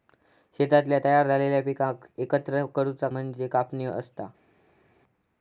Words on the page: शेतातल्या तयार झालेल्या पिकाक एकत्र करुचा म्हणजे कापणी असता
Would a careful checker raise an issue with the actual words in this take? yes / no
no